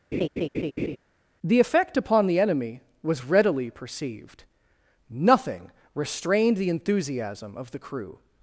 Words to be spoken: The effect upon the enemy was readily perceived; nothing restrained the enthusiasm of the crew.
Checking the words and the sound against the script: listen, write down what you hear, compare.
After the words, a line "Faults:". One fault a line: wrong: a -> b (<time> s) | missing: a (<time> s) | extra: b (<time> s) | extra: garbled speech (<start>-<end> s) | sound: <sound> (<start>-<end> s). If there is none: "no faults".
The effect upon the enemy was readily perceived; nothing restrained the enthusiasm of the crew.
Faults:
sound: laugh (0.1-1.0 s)